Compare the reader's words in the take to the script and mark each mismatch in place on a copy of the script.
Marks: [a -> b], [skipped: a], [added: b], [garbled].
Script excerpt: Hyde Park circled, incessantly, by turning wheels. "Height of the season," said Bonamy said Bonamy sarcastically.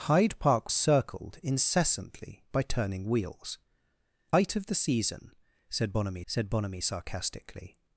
Hyde Park circled, incessantly, by turning wheels. "Height of the season," said Bonamy said Bonamy sarcastically.